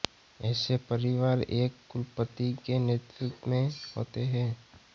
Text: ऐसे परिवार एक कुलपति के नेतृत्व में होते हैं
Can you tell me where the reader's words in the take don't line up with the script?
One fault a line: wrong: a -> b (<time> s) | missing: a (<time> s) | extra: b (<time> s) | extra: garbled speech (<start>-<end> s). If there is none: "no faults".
no faults